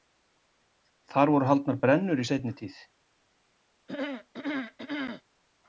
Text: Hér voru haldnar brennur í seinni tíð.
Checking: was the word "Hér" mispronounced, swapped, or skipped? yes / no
yes